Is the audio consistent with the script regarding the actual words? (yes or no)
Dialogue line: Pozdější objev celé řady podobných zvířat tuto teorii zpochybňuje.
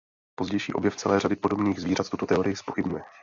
yes